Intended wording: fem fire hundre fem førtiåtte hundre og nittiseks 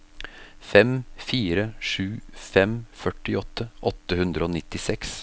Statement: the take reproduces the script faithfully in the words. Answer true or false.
false